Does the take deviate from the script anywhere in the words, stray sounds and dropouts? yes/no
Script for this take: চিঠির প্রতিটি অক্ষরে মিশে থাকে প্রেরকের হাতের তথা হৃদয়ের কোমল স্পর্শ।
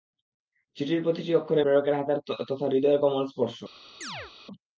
yes